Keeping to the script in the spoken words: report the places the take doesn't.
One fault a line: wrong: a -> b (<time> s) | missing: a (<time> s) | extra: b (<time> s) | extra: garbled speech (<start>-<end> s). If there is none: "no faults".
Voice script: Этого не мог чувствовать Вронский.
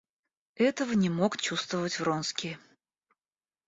no faults